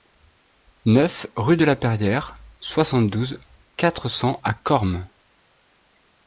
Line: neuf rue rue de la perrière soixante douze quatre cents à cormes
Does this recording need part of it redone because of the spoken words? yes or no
yes